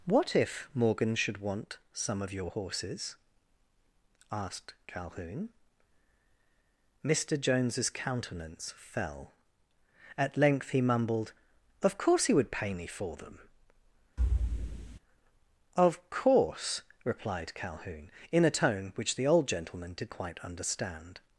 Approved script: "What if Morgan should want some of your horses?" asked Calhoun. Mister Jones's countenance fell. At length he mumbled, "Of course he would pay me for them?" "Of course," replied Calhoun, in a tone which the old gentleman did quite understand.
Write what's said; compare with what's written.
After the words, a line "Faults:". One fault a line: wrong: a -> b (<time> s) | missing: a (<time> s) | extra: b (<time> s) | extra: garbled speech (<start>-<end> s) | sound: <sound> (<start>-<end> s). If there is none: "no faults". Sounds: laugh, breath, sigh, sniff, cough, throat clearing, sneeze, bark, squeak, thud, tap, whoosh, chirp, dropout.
"What if Morgan should want some of your horses?" asked Calhoun. Mister Jones's countenance fell. At length he mumbled, "Of course he would pay me for them?" "Of course," replied Calhoun, in a tone which the old gentleman did quite understand.
Faults:
sound: thud (14.2-15.0 s)